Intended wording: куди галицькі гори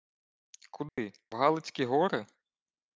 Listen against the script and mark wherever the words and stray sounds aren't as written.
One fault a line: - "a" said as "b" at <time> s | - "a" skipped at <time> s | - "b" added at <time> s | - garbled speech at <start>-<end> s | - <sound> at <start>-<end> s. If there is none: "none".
- dropout at 0.9-1.0 s